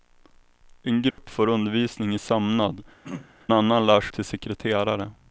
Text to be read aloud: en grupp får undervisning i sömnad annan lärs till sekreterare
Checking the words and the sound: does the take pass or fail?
fail